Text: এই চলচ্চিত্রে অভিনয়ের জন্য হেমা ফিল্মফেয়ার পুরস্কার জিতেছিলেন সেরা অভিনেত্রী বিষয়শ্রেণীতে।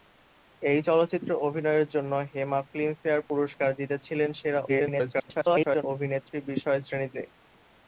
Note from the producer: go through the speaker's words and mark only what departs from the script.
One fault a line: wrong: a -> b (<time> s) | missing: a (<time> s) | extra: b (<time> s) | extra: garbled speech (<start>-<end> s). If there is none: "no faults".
extra: garbled speech (4.7-5.8 s)